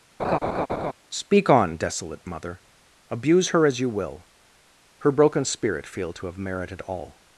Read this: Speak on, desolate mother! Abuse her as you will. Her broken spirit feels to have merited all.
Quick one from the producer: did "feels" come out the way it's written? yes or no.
no